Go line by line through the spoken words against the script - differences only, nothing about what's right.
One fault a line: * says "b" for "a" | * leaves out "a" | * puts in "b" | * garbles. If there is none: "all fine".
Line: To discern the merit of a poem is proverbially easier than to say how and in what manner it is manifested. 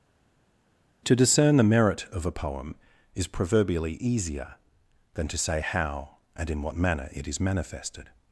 all fine